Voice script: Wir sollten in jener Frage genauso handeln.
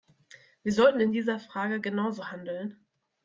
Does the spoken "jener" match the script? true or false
false